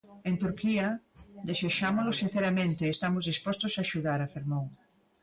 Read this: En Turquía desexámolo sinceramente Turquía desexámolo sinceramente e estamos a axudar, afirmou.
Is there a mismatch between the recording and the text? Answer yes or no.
yes